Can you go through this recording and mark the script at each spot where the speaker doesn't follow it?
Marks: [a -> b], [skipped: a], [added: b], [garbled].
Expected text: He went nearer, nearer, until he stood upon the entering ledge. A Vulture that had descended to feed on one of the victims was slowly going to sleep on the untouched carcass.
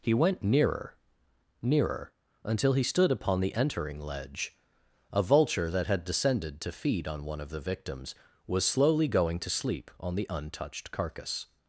He went nearer, nearer, until he stood upon the entering ledge. A Vulture that had descended to feed on one of the victims was slowly going to sleep on the untouched carcass.